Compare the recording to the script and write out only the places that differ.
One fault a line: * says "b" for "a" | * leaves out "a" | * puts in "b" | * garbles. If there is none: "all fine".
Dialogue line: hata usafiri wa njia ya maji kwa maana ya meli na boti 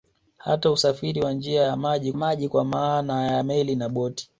* puts in "maji"